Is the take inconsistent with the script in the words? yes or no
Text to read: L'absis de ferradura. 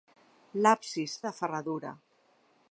no